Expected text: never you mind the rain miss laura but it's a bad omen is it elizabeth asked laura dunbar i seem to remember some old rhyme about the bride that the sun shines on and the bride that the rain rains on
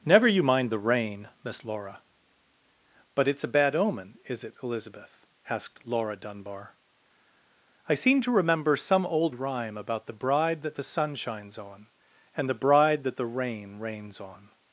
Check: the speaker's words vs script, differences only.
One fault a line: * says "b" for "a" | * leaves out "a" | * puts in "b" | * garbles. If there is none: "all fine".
all fine